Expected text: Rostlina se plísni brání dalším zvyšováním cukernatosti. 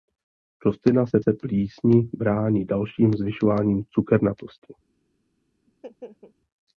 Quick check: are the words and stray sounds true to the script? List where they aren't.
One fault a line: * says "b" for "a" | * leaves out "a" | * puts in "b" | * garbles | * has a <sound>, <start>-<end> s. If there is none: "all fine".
* puts in "se"
* has a laugh, 5.7-6.3 s